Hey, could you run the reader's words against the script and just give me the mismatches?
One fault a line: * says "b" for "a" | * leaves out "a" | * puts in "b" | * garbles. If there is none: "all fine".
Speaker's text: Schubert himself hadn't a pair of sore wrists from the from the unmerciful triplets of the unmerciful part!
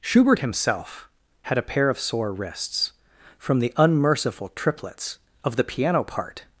* says "had" for "hadn't"
* leaves out "from the"
* says "piano" for "unmerciful"